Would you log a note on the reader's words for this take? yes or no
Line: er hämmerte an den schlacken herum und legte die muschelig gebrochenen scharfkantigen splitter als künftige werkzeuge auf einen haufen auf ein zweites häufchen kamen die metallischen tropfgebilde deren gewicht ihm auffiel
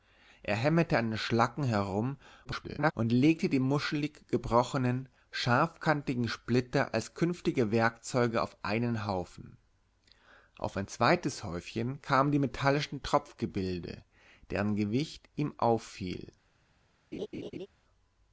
yes